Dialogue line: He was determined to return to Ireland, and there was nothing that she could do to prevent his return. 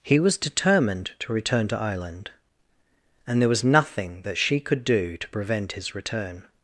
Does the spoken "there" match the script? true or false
true